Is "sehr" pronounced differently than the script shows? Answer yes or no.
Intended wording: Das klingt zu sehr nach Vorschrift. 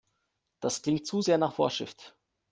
no